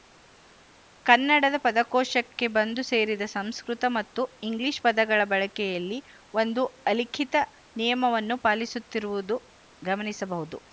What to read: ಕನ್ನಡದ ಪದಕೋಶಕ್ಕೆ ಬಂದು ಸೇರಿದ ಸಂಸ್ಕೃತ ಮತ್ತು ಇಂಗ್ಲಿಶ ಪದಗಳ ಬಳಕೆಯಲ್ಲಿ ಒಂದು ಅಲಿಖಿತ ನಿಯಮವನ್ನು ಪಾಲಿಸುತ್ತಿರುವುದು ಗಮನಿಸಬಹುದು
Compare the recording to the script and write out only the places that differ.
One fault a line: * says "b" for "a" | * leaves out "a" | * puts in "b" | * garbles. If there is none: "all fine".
all fine